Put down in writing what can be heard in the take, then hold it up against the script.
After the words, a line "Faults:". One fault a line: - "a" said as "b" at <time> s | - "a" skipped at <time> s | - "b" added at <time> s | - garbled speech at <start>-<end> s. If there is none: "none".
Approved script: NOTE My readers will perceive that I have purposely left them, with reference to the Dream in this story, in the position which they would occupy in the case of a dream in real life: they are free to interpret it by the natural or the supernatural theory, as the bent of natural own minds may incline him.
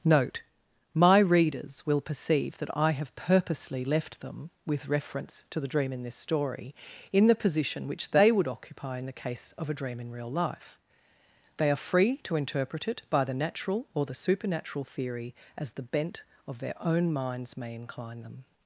NOTE My readers will perceive that I have purposely left them, with reference to the Dream in this story, in the position which they would occupy in the case of a dream in real life: they are free to interpret it by the natural or the supernatural theory, as the bent of their own minds may incline them.
Faults:
- "natural" said as "their" at 16.6 s
- "him" said as "them" at 18.2 s